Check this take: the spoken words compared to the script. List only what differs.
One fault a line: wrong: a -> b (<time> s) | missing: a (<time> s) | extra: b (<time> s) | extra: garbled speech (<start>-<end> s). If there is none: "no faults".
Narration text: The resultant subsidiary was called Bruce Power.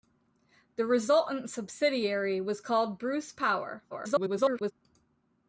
extra: garbled speech (3.9-4.7 s)